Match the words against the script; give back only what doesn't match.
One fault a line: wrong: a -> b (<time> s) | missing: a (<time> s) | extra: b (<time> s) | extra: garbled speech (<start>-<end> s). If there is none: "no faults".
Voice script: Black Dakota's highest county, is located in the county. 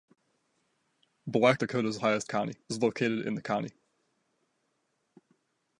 no faults